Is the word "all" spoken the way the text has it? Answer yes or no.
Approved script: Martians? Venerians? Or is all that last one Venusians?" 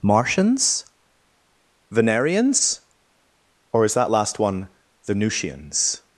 no